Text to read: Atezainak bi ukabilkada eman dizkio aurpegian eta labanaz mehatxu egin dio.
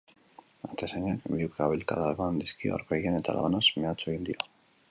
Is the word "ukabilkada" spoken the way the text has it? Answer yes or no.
yes